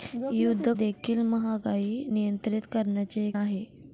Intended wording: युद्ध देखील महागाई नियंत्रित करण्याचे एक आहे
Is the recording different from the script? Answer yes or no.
no